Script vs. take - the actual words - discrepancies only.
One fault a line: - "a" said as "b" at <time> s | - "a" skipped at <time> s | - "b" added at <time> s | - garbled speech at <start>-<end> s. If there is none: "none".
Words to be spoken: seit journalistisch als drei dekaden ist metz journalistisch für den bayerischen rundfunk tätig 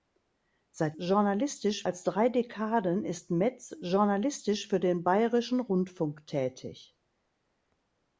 none